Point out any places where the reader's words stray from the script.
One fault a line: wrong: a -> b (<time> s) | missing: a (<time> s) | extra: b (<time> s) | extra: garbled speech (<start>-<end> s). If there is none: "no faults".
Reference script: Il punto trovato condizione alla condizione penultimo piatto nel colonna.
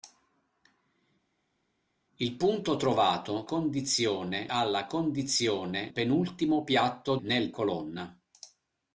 no faults